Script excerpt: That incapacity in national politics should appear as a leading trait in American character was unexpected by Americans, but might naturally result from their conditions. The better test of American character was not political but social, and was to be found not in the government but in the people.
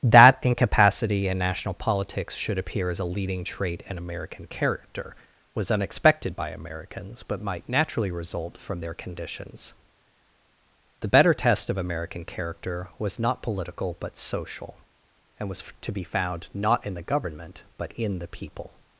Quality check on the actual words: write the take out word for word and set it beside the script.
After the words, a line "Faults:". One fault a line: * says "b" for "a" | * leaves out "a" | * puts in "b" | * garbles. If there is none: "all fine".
That incapacity in national politics should appear as a leading trait in American character was unexpected by Americans, but might naturally result from their conditions. The better test of American character was not political but social, and was to be found not in the government but in the people.
Faults:
all fine